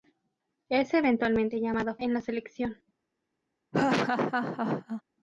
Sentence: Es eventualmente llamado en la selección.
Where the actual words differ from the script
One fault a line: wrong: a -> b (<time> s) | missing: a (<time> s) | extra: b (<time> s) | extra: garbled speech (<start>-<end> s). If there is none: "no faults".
no faults